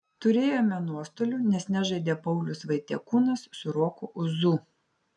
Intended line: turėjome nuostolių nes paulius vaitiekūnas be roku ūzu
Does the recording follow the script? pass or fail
fail